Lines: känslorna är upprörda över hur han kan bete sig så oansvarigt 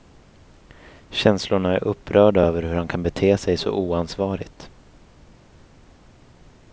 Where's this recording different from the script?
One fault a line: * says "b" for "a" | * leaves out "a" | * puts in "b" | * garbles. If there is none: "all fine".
all fine